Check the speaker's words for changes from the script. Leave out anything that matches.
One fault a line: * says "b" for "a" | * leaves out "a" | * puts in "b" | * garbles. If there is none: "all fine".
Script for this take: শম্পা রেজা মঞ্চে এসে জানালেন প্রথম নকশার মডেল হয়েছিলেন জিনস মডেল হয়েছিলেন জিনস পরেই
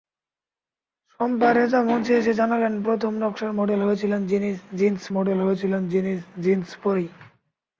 all fine